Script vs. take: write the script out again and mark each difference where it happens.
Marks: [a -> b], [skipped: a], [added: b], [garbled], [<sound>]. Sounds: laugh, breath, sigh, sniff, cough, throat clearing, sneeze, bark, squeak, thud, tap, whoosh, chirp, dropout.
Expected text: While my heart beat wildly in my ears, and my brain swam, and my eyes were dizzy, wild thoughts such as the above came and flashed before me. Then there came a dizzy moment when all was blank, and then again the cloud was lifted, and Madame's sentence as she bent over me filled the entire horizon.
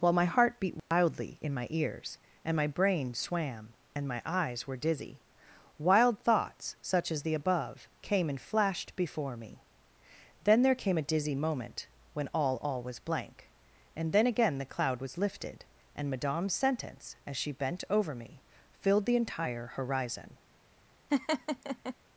While my heart beat wildly [dropout] in my ears, and my brain swam, and my eyes were dizzy, wild thoughts such as the above came and flashed before me. Then there came a dizzy moment when all [added: all] was blank, and then again the cloud was lifted, and Madame's sentence as she bent over me filled the entire horizon. [laugh]